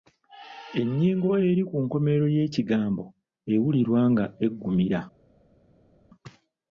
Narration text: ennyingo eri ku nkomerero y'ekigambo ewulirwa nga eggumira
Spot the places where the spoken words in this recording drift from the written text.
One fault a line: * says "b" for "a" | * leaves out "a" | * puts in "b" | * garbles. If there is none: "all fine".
all fine